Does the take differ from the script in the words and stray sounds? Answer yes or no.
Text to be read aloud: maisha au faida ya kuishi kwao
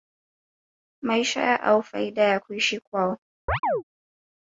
yes